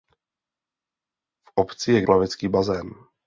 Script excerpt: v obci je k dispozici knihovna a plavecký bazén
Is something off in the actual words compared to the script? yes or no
yes